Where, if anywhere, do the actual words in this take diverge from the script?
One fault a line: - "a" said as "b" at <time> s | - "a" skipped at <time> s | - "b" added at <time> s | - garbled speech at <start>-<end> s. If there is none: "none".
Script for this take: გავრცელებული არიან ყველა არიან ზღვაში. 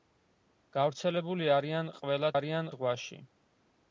none